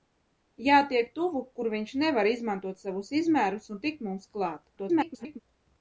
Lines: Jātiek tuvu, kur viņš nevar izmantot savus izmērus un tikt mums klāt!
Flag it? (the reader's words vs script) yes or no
yes